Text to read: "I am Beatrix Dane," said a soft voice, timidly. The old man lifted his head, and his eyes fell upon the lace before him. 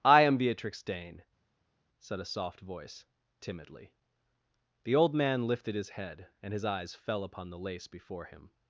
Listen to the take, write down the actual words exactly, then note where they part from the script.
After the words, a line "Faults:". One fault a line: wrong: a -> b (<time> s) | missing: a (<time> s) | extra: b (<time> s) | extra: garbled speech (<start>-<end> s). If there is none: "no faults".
"I am Beatrix Dane," said a soft voice, timidly. The old man lifted his head, and his eyes fell upon the lace before him.
Faults:
no faults